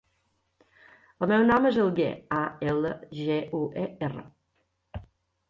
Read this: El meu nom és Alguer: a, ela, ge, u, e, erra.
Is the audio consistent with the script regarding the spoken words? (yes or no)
yes